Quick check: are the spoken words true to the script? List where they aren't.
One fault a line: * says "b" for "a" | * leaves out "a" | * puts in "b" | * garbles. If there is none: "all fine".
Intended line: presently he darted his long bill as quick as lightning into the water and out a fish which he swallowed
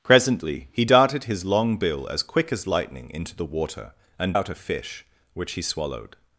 all fine